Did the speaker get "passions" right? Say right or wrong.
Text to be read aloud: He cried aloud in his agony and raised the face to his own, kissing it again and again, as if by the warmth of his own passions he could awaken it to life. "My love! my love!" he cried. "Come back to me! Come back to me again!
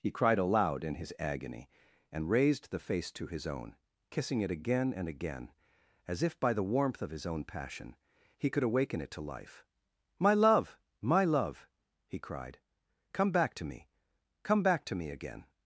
wrong